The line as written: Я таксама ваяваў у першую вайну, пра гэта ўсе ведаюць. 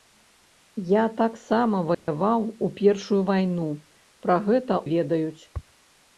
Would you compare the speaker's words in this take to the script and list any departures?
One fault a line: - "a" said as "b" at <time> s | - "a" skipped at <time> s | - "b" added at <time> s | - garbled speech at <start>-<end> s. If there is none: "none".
- "ўсе" skipped at 4.8 s